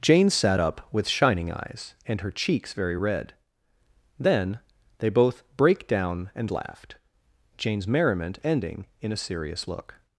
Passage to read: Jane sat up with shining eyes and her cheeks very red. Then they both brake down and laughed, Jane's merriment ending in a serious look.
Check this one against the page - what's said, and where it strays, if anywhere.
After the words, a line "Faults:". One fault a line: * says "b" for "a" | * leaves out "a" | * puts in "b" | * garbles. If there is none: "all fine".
Jane sat up with shining eyes and her cheeks very red. Then they both brake down and laughed, Jane's merriment ending in a serious look.
Faults:
all fine